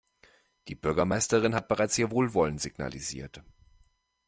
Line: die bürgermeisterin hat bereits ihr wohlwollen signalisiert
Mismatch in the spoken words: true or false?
false